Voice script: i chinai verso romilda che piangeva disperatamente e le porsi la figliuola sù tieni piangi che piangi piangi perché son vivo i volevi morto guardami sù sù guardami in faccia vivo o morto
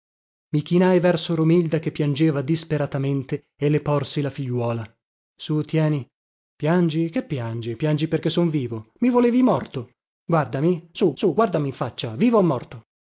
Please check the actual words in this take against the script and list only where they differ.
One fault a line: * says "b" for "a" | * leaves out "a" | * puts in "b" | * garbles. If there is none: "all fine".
all fine